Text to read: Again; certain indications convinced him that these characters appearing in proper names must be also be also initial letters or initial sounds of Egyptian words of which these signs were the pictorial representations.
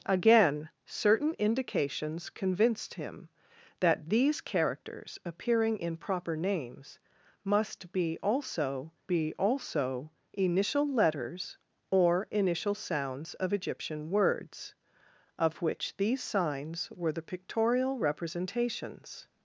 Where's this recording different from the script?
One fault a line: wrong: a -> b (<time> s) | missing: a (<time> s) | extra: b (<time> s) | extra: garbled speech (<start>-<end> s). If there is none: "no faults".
no faults